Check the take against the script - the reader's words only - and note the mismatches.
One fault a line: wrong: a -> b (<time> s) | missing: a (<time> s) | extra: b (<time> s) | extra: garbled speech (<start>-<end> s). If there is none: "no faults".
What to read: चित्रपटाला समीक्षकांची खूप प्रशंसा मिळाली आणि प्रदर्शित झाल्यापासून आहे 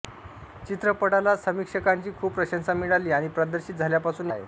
no faults